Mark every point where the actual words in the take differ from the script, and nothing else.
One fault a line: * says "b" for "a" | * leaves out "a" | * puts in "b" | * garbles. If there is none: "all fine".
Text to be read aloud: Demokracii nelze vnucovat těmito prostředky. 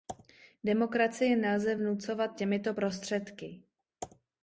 all fine